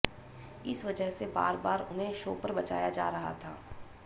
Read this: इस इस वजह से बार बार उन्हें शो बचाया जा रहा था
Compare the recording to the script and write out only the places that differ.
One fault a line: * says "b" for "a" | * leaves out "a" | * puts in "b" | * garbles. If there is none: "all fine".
* leaves out "इस"
* puts in "पर"